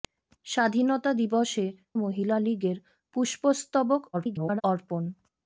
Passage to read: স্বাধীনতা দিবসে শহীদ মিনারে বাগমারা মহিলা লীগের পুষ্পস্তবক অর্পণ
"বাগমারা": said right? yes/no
no